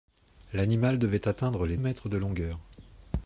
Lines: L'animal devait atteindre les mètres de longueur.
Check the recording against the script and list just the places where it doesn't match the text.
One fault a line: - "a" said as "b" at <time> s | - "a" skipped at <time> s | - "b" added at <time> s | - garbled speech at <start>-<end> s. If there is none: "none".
none